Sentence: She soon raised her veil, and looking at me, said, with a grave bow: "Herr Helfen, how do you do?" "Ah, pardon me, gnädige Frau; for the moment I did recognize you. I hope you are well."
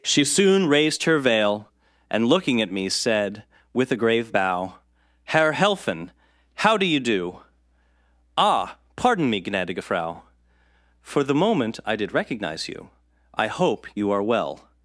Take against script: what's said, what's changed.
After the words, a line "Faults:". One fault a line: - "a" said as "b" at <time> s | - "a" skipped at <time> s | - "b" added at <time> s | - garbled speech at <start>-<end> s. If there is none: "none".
She soon raised her veil, and looking at me, said, with a grave bow: "Herr Helfen, how do you do?" "Ah, pardon me, gnädige Frau; for the moment I did recognize you. I hope you are well."
Faults:
none